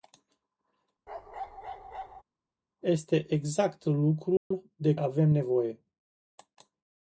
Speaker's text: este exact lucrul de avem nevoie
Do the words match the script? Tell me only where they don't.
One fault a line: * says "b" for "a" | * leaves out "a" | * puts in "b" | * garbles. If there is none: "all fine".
all fine